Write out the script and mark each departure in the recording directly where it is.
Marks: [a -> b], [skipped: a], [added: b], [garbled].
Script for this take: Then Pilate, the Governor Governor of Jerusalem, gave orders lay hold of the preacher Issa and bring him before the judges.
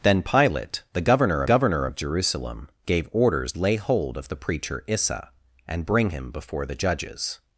Then Pilate, the Governor Governor of Jerusalem, gave orders lay hold of the preacher Issa and bring him before the judges.